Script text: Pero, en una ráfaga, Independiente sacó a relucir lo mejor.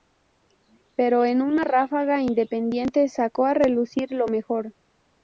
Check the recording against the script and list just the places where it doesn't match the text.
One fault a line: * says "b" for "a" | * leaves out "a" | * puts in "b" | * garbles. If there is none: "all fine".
all fine